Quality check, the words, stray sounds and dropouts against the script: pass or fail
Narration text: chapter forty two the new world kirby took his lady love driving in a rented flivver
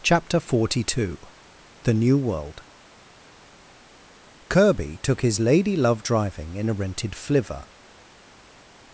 pass